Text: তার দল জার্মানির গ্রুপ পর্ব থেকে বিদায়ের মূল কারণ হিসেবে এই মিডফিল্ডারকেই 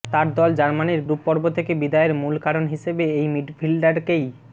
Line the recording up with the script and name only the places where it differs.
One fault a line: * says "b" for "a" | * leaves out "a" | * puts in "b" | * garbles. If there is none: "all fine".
all fine